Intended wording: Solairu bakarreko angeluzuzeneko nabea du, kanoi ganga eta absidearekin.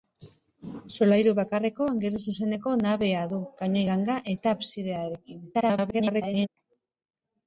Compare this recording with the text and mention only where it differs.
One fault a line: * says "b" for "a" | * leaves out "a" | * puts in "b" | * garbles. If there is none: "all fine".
* garbles